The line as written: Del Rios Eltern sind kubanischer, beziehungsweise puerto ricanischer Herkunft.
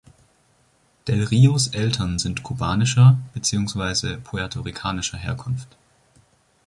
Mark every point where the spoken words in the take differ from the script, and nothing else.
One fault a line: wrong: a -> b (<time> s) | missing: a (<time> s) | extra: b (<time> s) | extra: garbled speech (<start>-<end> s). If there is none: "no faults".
no faults